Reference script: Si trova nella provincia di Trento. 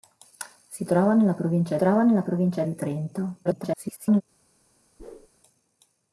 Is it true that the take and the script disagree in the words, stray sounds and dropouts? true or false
true